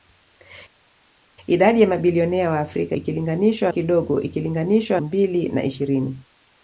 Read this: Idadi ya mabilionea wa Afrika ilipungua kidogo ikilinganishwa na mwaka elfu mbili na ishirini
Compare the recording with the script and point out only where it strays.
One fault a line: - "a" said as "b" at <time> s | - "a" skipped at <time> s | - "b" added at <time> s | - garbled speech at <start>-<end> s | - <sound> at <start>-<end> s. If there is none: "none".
- "ilipungua" said as "ikilinganishwa" at 2.9 s
- "na mwaka elfu" skipped at 5.0 s